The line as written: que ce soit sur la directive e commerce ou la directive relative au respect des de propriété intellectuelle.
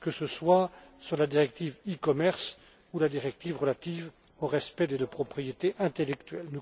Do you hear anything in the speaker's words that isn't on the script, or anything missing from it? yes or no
no